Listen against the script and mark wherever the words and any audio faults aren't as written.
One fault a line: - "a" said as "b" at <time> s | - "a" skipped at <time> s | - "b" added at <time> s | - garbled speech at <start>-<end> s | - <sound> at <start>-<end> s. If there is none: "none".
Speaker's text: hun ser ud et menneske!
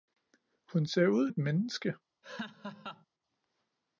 - laugh at 2.2-3.1 s